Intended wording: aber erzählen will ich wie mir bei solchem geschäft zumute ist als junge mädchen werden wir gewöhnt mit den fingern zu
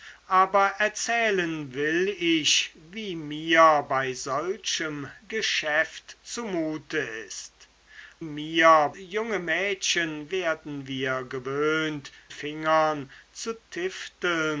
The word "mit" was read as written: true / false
false